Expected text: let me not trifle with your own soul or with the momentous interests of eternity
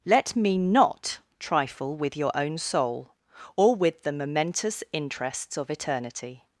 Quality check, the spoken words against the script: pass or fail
pass